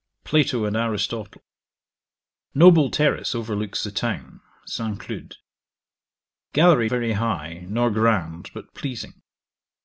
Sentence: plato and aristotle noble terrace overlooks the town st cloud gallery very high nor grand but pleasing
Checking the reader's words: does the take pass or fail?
pass